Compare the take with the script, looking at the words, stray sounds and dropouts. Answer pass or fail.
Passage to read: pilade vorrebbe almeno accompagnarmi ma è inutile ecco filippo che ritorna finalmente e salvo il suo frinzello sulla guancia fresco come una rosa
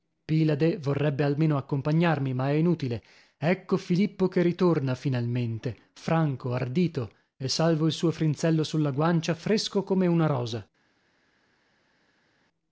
fail